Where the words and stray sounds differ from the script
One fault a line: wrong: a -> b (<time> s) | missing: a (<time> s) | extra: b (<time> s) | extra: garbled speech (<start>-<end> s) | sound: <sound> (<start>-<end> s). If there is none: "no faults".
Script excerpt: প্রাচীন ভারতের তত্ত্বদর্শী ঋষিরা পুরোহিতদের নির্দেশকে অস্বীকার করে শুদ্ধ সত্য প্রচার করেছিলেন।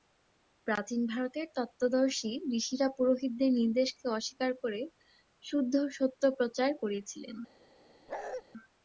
sound: bark (8.1-8.4 s)